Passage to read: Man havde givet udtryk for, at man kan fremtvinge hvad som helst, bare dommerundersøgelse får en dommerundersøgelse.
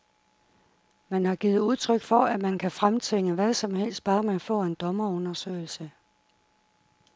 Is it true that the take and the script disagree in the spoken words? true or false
true